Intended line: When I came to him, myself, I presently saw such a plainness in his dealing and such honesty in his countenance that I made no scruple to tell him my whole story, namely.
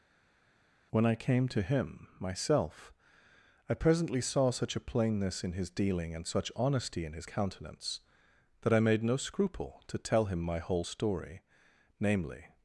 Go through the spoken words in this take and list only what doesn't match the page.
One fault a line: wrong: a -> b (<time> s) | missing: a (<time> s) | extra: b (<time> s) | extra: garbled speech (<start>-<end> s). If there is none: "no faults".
no faults